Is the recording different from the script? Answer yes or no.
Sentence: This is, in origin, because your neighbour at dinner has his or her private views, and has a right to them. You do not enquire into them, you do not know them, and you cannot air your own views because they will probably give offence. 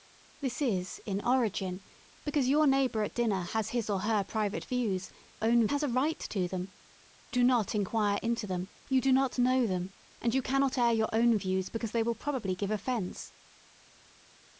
yes